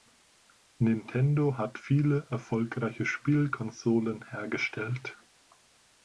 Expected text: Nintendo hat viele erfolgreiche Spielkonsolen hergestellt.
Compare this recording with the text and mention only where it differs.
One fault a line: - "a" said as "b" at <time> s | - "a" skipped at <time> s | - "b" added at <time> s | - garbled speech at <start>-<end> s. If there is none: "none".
none